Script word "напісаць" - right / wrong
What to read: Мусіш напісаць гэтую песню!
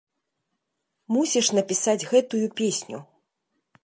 right